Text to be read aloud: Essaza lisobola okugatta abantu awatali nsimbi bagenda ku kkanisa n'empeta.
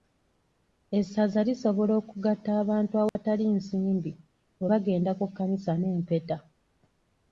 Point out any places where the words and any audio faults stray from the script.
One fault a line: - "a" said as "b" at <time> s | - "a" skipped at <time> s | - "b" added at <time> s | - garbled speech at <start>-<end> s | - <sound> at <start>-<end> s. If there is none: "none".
- dropout at 3.1-3.2 s
- "bwe" added at 4.6 s